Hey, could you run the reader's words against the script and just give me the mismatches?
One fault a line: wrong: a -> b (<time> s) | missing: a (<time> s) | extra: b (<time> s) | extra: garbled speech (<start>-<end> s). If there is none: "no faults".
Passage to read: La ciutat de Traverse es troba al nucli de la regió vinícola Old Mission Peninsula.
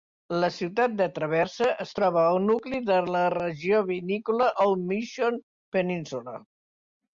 no faults